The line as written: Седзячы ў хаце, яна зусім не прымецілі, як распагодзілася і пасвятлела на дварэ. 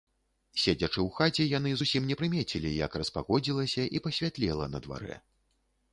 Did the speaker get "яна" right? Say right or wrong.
wrong